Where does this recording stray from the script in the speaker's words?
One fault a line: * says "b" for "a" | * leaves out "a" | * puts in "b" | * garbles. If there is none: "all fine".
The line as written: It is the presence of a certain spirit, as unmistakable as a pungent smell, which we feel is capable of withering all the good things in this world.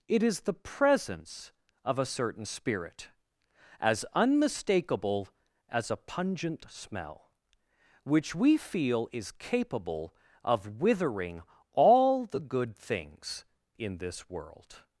all fine